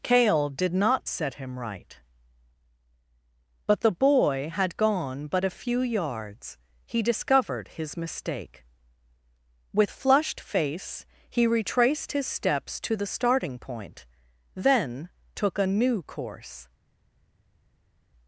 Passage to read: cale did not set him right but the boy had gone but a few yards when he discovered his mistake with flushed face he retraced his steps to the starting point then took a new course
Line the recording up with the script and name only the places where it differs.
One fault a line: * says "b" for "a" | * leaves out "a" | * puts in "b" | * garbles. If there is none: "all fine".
* leaves out "when"